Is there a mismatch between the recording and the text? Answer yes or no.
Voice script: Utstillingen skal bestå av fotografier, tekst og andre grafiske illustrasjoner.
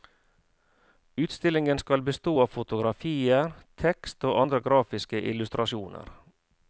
no